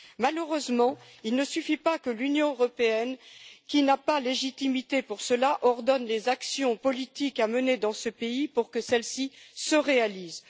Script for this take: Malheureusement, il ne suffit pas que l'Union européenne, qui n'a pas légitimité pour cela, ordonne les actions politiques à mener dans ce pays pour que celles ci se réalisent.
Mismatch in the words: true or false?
false